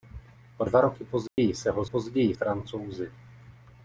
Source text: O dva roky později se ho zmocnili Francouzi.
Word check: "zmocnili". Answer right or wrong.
wrong